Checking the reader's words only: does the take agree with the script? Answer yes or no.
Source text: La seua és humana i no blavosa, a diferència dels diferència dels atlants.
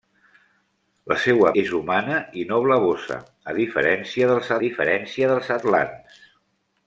yes